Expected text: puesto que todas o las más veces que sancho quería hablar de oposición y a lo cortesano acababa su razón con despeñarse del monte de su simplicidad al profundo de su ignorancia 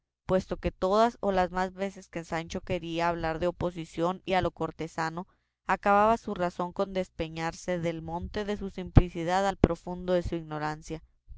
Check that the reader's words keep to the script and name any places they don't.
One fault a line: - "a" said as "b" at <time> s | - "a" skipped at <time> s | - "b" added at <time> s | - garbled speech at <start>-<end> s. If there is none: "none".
none